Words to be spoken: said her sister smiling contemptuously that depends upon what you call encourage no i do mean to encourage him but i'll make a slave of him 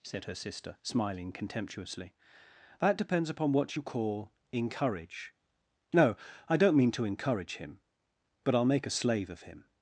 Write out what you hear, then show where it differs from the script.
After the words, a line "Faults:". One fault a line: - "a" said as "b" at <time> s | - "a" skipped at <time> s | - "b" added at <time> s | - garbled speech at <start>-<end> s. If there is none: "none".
said her sister smiling contemptuously that depends upon what you call encourage no i don't mean to encourage him but i'll make a slave of him
Faults:
- "do" said as "don't" at 6.6 s